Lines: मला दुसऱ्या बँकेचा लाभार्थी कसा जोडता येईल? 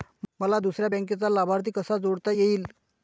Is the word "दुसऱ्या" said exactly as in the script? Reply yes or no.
yes